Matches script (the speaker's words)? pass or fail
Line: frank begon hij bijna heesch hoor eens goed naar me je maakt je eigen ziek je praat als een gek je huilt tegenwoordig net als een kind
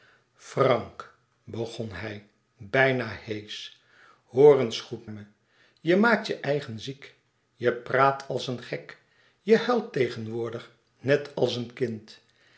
fail